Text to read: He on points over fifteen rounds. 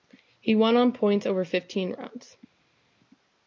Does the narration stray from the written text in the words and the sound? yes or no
yes